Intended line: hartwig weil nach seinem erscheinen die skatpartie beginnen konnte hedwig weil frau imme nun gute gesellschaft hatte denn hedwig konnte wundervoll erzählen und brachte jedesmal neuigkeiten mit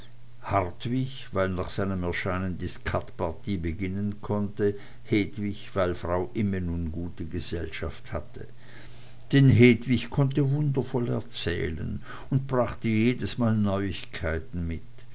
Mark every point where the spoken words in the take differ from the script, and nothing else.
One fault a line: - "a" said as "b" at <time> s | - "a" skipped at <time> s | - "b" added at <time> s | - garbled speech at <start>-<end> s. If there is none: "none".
none